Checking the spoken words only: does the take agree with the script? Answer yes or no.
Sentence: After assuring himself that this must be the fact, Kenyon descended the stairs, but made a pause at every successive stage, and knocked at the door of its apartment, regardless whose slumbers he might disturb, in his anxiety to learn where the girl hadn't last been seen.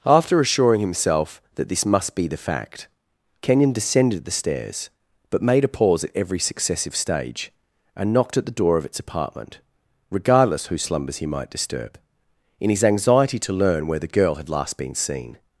no